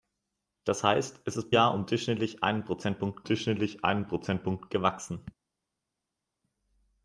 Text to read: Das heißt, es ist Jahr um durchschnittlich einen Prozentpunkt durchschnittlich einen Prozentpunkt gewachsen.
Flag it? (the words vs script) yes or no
no